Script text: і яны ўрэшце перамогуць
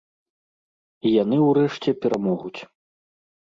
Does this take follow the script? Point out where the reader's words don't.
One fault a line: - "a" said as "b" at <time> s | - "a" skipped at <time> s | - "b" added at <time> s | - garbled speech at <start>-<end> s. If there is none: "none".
none